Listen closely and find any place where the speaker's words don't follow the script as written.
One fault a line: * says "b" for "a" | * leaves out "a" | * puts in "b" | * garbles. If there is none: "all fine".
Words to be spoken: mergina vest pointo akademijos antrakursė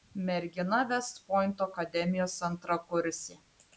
all fine